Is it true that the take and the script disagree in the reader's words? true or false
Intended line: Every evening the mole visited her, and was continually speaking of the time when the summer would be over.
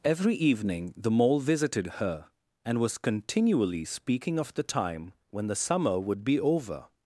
false